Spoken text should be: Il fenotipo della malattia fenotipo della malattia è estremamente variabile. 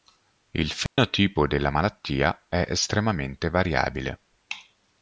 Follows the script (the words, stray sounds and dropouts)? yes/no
no